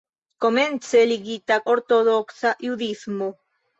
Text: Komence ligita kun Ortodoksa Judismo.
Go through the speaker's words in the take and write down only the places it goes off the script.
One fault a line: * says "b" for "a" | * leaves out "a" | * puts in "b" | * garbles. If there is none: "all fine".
* leaves out "kun"